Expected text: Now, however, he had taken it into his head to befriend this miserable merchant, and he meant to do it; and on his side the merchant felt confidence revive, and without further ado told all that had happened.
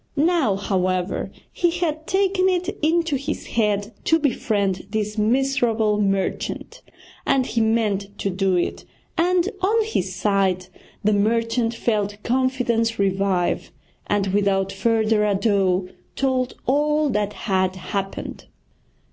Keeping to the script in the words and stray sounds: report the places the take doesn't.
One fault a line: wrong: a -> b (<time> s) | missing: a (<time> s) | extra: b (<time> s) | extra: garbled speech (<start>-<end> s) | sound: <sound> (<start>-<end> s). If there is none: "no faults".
no faults